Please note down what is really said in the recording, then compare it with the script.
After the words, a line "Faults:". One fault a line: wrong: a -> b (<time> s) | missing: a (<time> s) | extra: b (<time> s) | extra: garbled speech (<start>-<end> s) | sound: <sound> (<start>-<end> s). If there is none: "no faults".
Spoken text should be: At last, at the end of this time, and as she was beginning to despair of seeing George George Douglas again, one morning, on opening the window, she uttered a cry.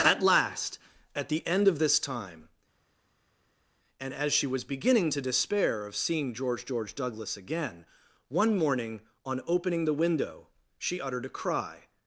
At last, at the end of this time, and as she was beginning to despair of seeing George George Douglas again, one morning, on opening the window, she uttered a cry.
Faults:
no faults